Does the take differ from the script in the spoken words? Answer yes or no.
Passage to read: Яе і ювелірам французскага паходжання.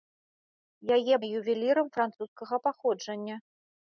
no